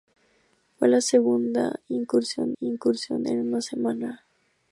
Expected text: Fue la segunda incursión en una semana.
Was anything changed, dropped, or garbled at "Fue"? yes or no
no